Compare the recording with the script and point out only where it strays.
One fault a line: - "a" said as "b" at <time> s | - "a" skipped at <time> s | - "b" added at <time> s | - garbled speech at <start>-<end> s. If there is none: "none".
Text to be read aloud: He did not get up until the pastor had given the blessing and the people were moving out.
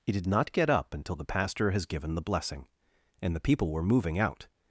- "had" said as "has" at 1.7 s